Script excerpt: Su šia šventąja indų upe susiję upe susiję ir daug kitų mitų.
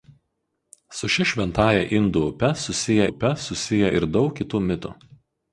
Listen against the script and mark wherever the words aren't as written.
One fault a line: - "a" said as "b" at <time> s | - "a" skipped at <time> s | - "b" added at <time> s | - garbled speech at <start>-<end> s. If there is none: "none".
none